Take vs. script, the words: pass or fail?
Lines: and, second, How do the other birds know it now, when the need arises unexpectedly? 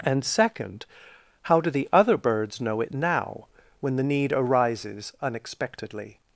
pass